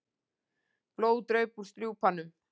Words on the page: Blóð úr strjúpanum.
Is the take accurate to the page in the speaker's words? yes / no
no